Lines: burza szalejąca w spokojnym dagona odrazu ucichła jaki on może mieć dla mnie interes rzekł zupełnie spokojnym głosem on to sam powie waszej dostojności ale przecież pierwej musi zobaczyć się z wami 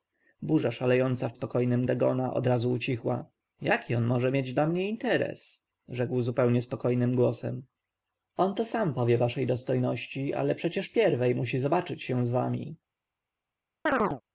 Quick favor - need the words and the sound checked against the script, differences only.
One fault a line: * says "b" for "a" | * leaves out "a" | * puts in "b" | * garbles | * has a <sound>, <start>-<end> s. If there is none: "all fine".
* has a chirp, 13.9-14.2 s